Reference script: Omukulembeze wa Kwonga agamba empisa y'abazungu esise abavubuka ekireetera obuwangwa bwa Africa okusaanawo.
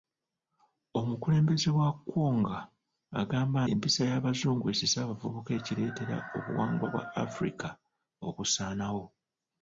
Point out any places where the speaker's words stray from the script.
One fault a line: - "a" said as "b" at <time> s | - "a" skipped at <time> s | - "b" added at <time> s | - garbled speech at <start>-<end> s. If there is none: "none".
none